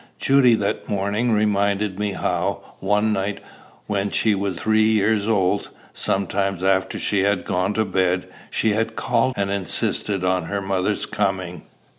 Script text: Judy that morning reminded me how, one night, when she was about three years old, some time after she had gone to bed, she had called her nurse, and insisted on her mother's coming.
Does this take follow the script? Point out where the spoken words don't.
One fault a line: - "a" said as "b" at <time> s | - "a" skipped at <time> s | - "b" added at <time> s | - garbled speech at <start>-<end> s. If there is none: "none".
- "about" skipped at 4.6 s
- "her nurse" skipped at 9.3 s